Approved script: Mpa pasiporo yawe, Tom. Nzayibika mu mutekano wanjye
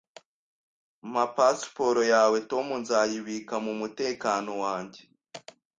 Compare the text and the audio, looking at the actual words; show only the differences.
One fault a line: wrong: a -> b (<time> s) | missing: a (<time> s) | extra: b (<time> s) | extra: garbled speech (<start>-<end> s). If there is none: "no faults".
no faults